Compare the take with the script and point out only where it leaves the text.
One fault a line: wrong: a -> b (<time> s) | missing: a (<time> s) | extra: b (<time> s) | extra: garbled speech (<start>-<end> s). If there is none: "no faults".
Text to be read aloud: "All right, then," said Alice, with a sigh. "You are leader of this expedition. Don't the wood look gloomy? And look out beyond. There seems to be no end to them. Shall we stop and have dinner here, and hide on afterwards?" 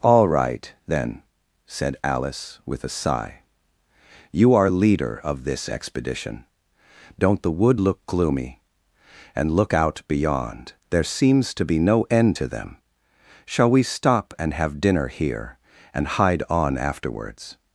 no faults